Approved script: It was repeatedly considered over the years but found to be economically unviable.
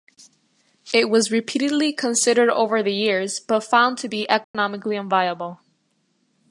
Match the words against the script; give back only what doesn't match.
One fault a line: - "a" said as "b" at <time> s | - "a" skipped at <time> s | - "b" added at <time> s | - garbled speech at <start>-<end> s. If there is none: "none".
none